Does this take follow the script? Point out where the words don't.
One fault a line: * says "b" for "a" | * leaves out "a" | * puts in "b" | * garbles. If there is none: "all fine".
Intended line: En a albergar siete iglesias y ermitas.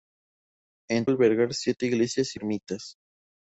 all fine